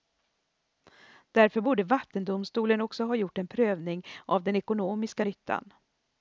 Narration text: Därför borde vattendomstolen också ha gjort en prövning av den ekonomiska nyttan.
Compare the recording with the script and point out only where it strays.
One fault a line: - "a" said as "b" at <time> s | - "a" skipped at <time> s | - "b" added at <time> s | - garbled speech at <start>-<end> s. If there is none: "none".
none